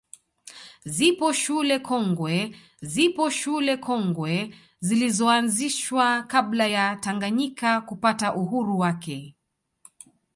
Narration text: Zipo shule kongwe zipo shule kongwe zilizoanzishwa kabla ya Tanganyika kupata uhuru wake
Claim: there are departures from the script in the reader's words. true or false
false